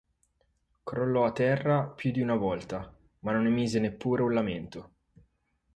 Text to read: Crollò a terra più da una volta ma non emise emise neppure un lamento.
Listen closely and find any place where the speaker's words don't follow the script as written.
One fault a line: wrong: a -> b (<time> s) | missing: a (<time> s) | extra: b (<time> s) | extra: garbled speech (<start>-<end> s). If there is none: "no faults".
wrong: da -> di (2.1 s)
missing: emise (3.8 s)